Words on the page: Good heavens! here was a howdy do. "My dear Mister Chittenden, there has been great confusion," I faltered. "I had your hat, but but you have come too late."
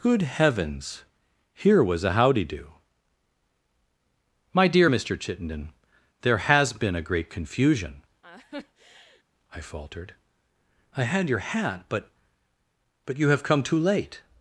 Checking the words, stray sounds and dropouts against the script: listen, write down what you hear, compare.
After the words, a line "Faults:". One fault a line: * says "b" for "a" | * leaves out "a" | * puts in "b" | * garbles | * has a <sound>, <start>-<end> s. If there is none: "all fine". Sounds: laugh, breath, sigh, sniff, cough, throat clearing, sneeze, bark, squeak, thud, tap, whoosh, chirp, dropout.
Good heavens! here was a howdy do. "My dear Mister Chittenden, there has been a great confusion," I faltered. "I had your hat, but but you have come too late."
Faults:
* puts in "a"
* has a laugh, 8.2-9.2 s